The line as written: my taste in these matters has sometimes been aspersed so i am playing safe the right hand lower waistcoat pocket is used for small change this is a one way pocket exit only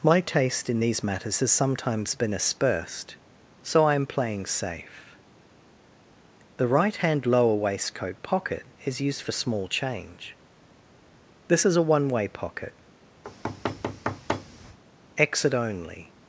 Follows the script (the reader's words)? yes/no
yes